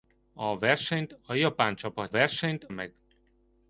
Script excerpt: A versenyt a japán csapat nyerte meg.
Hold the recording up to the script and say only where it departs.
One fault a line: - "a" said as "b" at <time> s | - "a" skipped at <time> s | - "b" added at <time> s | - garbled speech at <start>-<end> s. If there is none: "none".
- "nyerte" said as "versenyt" at 2.1 s